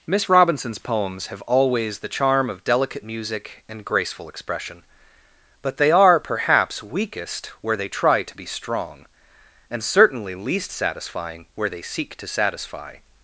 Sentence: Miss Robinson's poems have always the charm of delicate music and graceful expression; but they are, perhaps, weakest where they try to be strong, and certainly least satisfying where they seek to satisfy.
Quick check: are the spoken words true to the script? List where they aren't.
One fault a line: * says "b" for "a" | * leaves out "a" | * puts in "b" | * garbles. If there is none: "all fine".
all fine